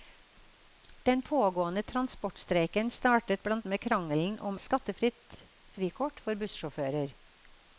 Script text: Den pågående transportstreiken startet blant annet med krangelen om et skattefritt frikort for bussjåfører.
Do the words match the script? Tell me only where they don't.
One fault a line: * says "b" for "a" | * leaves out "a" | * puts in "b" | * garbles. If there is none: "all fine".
* leaves out "annet"
* leaves out "et"